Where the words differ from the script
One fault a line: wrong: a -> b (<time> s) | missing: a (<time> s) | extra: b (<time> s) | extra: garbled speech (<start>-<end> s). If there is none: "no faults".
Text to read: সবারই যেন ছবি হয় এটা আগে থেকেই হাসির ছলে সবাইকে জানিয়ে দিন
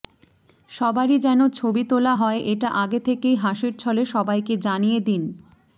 extra: তোলা (1.9 s)